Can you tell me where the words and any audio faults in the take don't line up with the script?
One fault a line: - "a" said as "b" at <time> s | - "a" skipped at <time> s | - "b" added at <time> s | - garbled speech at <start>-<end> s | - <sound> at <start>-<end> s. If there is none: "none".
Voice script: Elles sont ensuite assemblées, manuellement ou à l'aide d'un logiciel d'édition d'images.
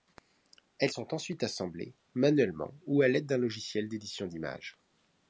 none